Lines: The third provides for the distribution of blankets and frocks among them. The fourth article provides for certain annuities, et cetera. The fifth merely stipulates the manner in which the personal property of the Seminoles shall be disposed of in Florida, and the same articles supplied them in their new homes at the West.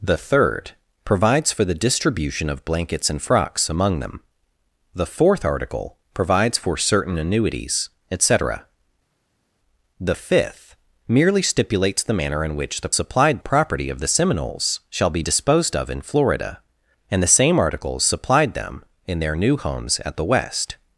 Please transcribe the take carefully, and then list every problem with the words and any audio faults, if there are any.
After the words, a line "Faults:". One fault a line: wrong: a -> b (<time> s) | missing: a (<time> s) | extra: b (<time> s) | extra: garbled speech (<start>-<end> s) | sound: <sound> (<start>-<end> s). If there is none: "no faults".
The third provides for the distribution of blankets and frocks among them. The fourth article provides for certain annuities, et cetera. The fifth merely stipulates the manner in which the supplied property of the Seminoles shall be disposed of in Florida, and the same articles supplied them in their new homes at the West.
Faults:
wrong: personal -> supplied (12.9 s)